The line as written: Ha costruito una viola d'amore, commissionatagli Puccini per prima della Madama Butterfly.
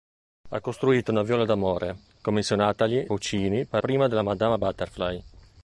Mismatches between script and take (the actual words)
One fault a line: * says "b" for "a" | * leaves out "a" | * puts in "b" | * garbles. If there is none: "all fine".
all fine